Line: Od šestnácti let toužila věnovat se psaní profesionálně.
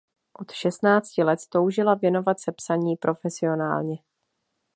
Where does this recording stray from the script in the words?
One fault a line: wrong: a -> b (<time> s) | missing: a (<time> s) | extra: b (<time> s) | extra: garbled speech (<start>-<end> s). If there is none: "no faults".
no faults